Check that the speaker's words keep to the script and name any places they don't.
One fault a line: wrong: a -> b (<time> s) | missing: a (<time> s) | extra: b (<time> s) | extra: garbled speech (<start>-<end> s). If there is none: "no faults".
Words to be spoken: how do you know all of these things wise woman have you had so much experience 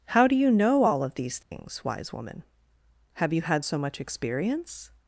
no faults